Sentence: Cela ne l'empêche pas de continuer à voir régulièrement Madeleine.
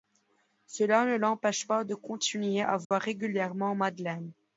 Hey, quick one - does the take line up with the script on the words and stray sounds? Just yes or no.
no